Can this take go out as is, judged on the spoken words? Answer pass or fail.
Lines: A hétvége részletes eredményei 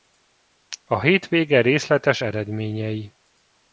pass